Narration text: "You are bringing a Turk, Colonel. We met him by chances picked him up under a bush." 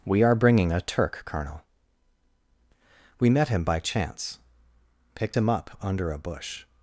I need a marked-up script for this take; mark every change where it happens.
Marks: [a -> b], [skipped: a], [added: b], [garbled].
["You -> We] are bringing a Turk, Colonel. We met him by [chances -> chance] picked him up under a bush."